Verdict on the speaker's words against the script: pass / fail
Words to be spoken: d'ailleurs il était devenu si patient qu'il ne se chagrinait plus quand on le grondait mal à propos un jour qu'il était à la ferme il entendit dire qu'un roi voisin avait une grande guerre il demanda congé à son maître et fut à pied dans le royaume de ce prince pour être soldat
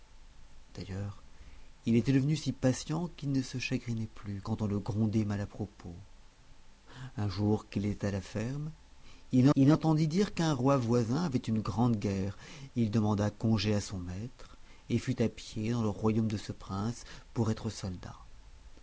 fail